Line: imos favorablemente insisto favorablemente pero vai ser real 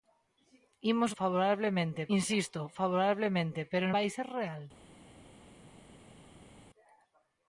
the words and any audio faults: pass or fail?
pass